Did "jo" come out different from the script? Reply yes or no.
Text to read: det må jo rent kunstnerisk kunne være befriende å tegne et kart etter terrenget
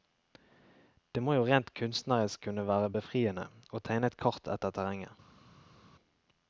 no